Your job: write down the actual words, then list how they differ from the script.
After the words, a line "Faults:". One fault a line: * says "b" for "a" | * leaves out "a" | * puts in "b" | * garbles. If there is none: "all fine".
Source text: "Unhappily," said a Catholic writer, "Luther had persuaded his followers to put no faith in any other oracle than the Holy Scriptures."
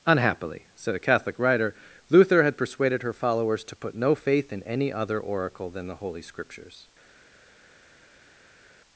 "Unhappily," said a Catholic writer, "Luther had persuaded her followers to put no faith in any other oracle than the Holy Scriptures."
Faults:
* says "her" for "his"